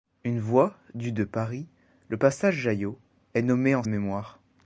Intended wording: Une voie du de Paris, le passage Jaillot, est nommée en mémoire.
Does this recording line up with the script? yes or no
yes